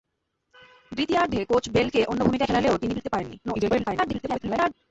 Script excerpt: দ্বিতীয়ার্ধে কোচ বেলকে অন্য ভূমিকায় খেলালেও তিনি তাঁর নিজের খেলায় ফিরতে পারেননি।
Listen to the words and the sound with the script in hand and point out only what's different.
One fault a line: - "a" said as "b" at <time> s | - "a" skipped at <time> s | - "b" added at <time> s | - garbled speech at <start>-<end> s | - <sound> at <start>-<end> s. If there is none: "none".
- "তাঁর নিজের খেলায়" skipped at 2.9 s
- garbled speech at 3.4-4.7 s